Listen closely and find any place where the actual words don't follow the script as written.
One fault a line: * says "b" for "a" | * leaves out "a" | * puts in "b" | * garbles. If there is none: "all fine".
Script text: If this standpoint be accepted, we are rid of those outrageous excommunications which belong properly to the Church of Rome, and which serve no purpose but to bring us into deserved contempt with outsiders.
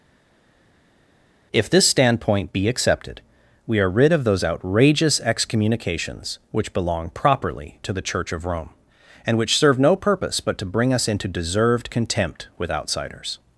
all fine